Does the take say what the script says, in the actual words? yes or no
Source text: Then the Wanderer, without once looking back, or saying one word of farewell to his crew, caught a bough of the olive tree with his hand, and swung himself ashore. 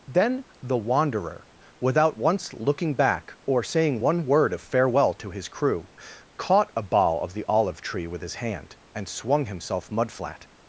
no